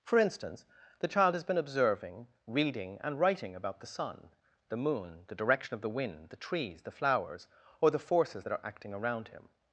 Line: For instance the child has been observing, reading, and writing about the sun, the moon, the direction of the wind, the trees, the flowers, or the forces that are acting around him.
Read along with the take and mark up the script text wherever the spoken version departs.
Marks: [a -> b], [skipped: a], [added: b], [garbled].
For instance the child has been observing, reading, and writing about the sun, the moon, the direction of the wind, the trees, the flowers, or the forces that are acting around him.